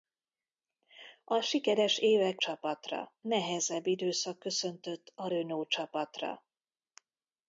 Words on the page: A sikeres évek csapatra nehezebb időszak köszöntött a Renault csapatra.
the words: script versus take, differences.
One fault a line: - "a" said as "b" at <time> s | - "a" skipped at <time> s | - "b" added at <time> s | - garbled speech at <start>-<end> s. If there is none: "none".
none